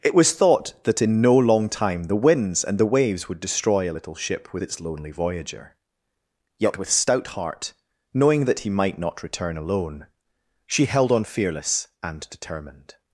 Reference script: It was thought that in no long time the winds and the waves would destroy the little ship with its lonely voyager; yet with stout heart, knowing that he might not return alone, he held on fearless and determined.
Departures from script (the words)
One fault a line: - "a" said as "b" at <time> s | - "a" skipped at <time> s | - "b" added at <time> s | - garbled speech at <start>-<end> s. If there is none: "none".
- "the" said as "a" at 3.9 s
- "he" said as "she" at 10.7 s